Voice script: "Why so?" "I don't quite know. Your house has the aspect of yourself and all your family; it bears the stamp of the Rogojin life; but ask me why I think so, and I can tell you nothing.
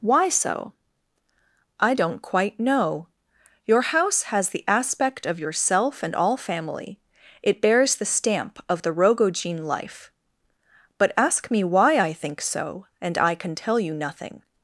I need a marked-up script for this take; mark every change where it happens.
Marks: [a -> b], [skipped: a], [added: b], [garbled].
"Why so?" "I don't quite know. Your house has the aspect of yourself and all [skipped: your] family; it bears the stamp of the Rogojin life; but ask me why I think so, and I can tell you nothing.